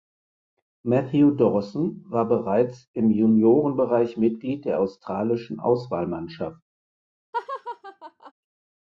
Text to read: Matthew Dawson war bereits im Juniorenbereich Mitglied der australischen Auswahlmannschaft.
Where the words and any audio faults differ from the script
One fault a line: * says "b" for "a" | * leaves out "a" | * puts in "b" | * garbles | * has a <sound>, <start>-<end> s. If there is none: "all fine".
* has a laugh, 7.3-8.3 s